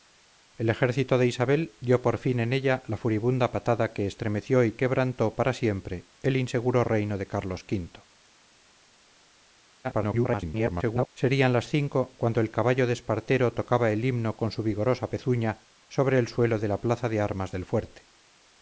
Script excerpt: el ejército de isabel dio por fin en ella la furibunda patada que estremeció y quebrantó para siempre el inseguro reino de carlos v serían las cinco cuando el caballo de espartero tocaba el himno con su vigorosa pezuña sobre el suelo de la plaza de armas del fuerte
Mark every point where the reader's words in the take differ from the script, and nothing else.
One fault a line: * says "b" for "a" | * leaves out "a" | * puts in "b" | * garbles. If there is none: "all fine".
* garbles